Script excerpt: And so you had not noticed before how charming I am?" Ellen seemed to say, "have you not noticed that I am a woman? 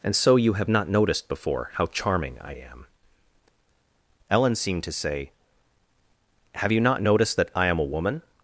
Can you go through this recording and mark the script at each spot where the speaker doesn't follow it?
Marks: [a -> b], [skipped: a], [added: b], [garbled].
And so you [had -> have] not noticed before how charming I am?" Ellen seemed to say, "have you not noticed that I am a woman?